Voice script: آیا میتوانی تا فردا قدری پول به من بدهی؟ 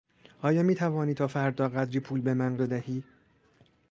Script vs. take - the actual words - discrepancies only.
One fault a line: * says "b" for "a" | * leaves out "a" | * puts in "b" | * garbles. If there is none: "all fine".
all fine